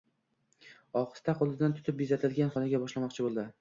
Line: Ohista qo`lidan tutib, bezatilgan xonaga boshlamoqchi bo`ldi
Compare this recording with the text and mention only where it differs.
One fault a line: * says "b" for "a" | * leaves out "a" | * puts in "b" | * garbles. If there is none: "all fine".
all fine